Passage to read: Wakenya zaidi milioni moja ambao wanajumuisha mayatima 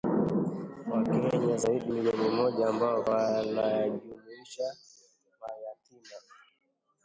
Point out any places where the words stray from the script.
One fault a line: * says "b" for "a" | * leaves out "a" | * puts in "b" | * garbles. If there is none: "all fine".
all fine